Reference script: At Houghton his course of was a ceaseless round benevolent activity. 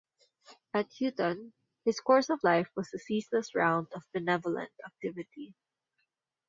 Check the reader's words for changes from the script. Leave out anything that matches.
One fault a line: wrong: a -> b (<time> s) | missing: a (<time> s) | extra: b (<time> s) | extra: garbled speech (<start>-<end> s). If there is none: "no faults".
extra: life (2.4 s)
extra: of (3.9 s)